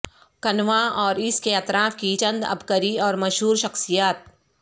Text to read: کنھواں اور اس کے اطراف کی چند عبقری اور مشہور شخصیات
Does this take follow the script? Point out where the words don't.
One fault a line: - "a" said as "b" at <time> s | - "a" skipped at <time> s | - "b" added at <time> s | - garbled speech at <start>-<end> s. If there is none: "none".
none